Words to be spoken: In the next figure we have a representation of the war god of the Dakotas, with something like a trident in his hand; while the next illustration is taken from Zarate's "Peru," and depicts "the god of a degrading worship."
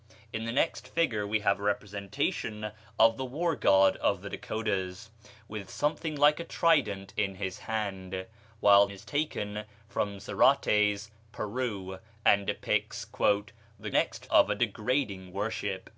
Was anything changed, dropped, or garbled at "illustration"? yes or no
yes